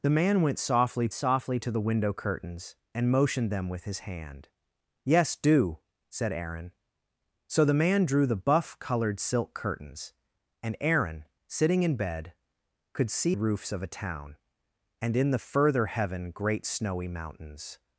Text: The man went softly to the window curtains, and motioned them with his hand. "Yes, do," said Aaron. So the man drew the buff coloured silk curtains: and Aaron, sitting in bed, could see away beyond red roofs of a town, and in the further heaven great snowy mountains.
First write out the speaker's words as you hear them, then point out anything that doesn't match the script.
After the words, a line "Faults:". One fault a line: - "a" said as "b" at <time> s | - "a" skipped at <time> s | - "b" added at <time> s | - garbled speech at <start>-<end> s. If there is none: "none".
The man went softly softly to the window curtains, and motioned them with his hand. "Yes, do," said Aaron. So the man drew the buff coloured silk curtains: and Aaron, sitting in bed, could see roofs of a town, and in the further heaven great snowy mountains.
Faults:
- "softly" added at 1.1 s
- "away beyond red" skipped at 13.4 s